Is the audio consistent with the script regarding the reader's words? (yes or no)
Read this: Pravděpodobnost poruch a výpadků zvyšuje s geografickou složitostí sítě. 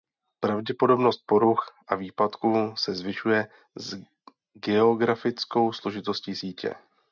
no